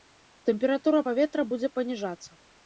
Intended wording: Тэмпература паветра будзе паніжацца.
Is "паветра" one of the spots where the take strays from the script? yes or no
no